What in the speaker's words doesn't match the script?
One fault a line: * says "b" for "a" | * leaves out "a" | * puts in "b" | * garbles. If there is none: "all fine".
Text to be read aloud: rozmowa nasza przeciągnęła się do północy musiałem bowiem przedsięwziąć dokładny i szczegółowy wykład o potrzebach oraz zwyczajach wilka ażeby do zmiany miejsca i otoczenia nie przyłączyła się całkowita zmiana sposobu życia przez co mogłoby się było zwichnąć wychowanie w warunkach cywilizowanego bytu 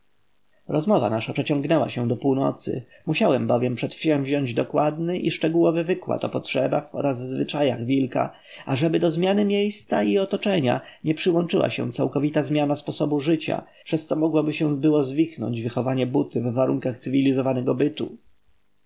* puts in "buty"